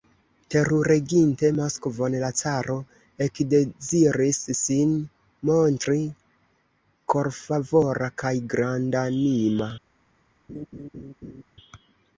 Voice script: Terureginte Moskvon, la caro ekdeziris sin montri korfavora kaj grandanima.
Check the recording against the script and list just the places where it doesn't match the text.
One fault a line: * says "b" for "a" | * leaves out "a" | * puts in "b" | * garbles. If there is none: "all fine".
all fine